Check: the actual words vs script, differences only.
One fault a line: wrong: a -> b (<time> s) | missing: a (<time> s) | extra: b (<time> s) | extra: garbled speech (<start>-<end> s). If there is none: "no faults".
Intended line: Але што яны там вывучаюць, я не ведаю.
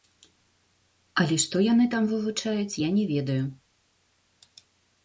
no faults